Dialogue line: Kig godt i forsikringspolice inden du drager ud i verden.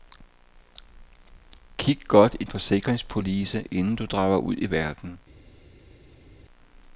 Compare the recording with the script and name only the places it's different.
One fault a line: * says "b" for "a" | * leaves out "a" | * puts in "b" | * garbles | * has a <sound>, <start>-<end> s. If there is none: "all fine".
all fine